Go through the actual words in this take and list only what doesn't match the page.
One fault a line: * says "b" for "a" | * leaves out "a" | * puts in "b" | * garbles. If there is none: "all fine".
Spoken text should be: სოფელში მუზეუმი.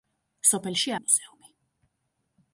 all fine